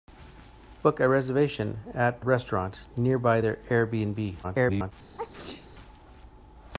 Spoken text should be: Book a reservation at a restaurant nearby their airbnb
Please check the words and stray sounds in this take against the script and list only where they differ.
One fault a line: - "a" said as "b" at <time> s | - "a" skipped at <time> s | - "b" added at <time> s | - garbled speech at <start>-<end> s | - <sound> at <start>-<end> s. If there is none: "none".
- "a" skipped at 2.2 s
- garbled speech at 4.4-4.9 s
- sneeze at 5.2-5.7 s